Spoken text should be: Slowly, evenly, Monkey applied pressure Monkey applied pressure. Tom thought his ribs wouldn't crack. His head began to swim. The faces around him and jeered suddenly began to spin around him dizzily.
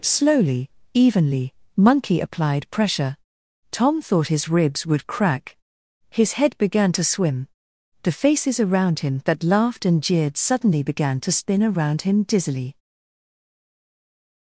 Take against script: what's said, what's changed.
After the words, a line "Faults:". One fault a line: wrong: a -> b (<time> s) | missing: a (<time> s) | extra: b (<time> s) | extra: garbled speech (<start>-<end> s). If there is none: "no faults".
Slowly, evenly, Monkey applied pressure. Tom thought his ribs would crack. His head began to swim. The faces around him that laughed and jeered suddenly began to spin around him dizzily.
Faults:
missing: Monkey applied pressure (3.2 s)
wrong: wouldn't -> would (4.9 s)
extra: that laughed (9.3 s)